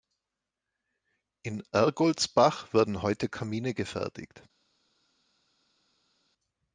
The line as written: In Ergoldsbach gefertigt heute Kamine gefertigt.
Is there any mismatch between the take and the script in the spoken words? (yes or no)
yes